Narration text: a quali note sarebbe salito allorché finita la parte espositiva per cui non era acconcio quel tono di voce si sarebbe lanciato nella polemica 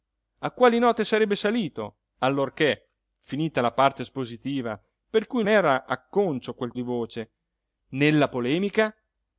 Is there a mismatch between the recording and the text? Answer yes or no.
yes